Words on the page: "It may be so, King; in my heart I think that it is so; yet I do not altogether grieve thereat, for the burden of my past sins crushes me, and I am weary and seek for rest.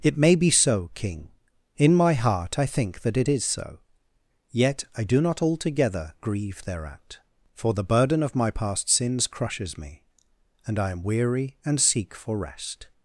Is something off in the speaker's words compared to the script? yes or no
no